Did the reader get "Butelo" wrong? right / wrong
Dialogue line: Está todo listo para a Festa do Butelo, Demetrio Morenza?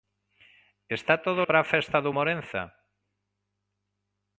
wrong